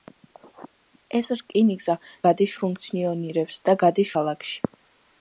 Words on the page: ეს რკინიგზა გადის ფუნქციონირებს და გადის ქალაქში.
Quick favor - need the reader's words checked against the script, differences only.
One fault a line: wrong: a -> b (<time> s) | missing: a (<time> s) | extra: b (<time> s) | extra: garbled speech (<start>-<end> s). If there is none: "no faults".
no faults